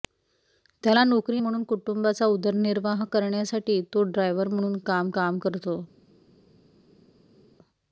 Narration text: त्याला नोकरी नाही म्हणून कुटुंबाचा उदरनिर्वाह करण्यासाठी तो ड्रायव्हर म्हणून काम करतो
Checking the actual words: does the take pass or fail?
fail